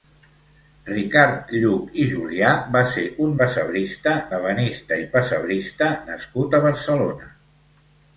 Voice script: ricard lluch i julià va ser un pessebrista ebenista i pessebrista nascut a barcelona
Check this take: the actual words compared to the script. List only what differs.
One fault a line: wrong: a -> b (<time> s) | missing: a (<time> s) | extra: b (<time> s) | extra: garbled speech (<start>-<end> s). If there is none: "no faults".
no faults